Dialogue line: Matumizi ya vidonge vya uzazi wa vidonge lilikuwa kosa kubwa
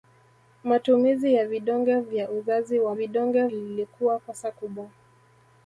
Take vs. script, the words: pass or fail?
pass